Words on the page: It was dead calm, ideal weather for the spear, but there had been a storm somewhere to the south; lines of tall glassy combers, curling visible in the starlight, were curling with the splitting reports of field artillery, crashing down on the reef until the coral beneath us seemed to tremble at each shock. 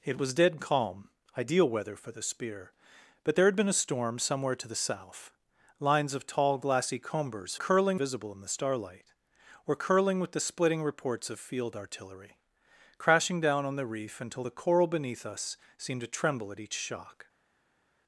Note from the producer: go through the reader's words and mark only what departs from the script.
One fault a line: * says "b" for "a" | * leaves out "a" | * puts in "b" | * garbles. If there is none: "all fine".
all fine